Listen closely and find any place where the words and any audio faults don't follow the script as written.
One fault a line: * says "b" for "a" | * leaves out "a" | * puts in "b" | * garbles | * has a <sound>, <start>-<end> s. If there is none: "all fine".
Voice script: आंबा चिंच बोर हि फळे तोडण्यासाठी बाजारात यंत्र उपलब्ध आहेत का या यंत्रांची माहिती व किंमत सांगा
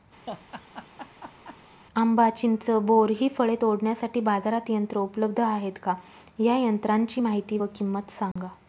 * has a laugh, 0.3-1.6 s
* has a dropout, 8.3-8.4 s